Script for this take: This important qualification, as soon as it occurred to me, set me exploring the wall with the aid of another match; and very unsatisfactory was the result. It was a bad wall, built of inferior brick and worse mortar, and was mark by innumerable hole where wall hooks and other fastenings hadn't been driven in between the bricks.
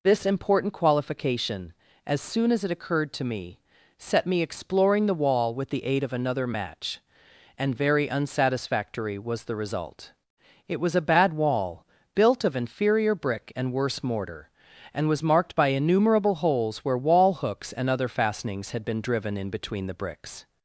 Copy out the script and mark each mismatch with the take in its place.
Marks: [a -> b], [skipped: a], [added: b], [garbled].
This important qualification, as soon as it occurred to me, set me exploring the wall with the aid of another match; and very unsatisfactory was the result. It was a bad wall, built of inferior brick and worse mortar, and was [mark -> marked] by innumerable [hole -> holes] where wall hooks and other fastenings [hadn't -> had] been driven in between the bricks.